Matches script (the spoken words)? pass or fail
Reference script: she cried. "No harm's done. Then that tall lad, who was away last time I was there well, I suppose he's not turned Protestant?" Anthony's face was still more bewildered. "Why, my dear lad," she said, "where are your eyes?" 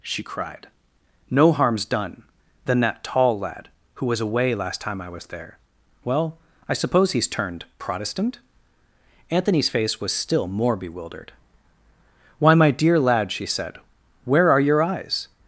fail